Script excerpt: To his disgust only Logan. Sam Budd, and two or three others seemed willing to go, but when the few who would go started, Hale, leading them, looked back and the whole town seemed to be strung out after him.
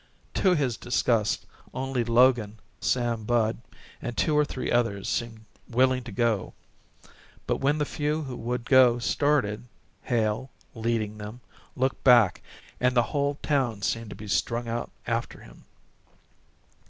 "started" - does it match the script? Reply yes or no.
yes